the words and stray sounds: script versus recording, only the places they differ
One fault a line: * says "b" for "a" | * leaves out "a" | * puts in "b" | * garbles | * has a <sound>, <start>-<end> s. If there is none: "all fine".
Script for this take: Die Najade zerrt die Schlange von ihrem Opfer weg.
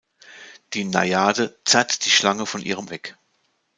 * leaves out "Opfer"